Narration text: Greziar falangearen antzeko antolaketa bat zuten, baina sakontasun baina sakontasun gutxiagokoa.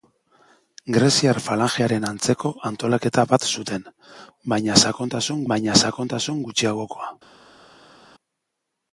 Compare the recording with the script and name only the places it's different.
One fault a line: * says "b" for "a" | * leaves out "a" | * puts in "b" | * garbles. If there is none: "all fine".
all fine